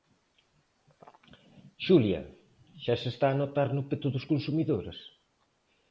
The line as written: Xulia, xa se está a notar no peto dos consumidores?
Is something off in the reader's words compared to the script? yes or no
no